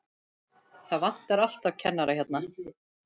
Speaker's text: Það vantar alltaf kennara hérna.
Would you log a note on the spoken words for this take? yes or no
no